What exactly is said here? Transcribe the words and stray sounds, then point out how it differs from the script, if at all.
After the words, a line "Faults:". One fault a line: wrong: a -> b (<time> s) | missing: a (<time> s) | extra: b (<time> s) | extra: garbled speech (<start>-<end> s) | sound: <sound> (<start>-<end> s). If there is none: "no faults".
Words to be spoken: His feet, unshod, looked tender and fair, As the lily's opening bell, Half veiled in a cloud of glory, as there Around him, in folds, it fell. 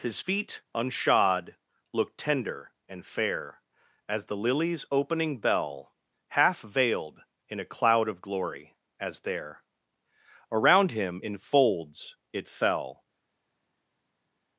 His feet, unshod, looked tender and fair, As the lily's opening bell, Half veiled in a cloud of glory, as there Around him, in folds, it fell.
Faults:
no faults